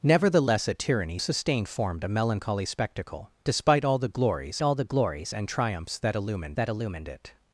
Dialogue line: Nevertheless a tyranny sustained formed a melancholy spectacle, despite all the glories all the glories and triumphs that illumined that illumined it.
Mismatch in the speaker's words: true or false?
false